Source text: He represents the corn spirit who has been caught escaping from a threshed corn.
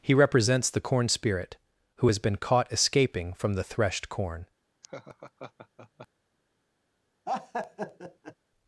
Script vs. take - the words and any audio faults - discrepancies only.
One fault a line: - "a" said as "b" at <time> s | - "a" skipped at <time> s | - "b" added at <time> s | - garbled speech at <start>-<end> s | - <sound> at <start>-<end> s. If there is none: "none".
- "a" said as "the" at 3.5 s
- laugh at 4.8-6.1 s
- laugh at 7.3-8.4 s